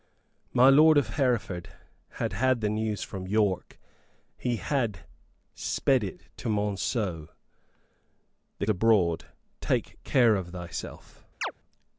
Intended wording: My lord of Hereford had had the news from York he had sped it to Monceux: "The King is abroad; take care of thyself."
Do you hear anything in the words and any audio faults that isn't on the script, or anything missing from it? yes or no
yes